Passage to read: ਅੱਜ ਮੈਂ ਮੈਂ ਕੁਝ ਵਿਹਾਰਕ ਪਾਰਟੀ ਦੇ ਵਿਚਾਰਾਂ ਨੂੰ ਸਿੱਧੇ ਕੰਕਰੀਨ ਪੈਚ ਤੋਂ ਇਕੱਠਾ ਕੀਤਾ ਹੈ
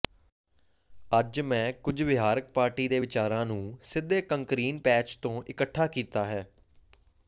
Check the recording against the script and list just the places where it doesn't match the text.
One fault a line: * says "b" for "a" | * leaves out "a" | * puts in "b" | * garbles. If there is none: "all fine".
* leaves out "ਮੈਂ"